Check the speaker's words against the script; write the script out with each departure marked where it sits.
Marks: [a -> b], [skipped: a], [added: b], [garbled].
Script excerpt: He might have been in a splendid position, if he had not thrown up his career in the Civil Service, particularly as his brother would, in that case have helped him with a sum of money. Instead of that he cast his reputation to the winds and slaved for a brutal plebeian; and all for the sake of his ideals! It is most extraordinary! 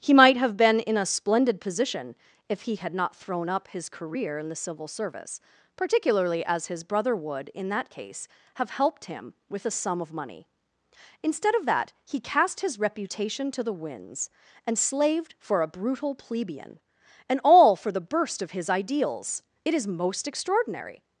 He might have been in a splendid position, if he had not thrown up his career in the Civil Service, particularly as his brother would, in that case have helped him with a sum of money. Instead of that he cast his reputation to the winds and slaved for a brutal plebeian; and all for the [sake -> burst] of his ideals! It is most extraordinary!